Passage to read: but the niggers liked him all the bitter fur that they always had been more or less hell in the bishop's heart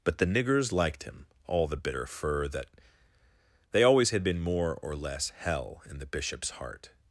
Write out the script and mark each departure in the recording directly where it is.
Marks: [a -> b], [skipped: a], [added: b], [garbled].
but the niggers liked him all the bitter fur that they always had been more or less hell in the bishop's heart